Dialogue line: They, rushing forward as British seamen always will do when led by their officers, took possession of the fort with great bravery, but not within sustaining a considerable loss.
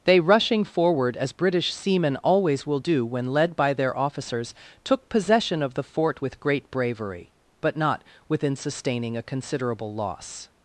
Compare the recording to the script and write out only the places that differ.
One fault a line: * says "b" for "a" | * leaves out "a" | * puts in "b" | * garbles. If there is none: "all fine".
all fine